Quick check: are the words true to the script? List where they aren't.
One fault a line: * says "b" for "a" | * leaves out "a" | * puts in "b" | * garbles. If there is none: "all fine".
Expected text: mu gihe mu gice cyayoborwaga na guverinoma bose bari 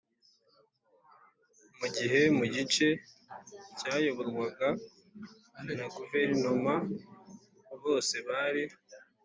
all fine